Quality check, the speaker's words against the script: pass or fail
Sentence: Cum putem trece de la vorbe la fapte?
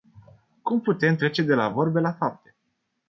pass